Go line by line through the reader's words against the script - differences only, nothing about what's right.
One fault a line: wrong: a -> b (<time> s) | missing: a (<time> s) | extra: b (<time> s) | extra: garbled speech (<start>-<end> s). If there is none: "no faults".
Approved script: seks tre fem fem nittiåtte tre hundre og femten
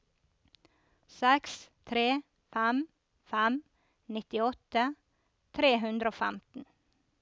no faults